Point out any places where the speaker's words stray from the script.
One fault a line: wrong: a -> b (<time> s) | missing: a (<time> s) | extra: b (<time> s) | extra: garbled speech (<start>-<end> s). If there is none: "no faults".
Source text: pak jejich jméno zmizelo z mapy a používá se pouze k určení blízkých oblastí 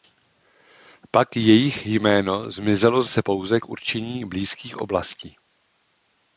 missing: mapy a používá (3.1 s)